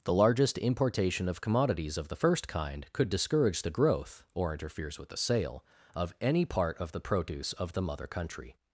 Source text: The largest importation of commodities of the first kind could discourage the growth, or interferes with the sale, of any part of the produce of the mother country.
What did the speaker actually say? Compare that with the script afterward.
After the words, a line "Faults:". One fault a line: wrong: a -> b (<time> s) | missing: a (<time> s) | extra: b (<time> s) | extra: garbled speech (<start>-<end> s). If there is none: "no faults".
The largest importation of commodities of the first kind could discourage the growth, or interferes with the sale, of any part of the produce of the mother country.
Faults:
no faults